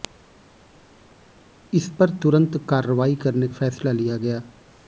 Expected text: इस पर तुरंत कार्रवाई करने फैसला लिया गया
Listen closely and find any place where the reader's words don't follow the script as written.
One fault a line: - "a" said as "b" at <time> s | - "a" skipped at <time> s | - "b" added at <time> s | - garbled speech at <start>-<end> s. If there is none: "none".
none